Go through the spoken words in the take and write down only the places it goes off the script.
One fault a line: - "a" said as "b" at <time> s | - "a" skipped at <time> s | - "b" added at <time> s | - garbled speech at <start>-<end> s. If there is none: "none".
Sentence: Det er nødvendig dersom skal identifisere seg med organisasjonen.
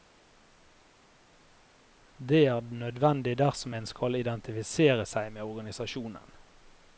- "en" added at 3.7 s